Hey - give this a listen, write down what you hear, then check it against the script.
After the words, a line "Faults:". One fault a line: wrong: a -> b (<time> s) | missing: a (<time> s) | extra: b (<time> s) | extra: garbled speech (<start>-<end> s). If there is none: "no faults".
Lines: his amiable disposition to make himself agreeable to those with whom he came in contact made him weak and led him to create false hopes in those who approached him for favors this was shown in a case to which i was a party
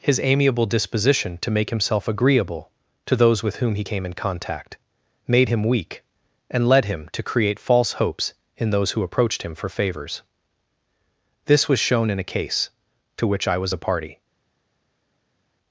his amiable disposition to make himself agreeable to those with whom he came in contact made him weak and led him to create false hopes in those who approached him for favors this was shown in a case to which i was a party
Faults:
no faults